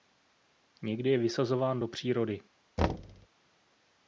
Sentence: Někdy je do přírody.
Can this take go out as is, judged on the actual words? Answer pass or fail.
fail